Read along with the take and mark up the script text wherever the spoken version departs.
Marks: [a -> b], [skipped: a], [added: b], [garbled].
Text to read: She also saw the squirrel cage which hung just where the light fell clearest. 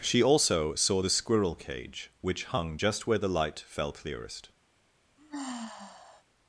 She also saw the squirrel cage which hung just where the light fell clearest.